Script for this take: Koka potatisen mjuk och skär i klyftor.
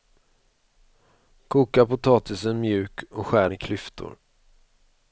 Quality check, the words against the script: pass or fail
pass